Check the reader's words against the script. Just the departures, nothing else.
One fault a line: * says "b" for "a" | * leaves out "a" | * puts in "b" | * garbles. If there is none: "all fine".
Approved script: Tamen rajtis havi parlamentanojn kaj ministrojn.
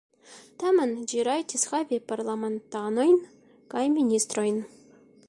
* puts in "ĝi"